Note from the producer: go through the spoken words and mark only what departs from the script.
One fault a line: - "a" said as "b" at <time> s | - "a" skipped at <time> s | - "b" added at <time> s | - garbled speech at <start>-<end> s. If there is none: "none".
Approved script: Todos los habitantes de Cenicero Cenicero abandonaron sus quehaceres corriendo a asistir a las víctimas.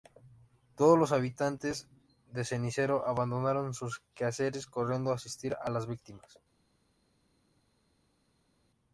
- "Cenicero" skipped at 3.1 s